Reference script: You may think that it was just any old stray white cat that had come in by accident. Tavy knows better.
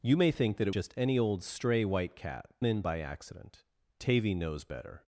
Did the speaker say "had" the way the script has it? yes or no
no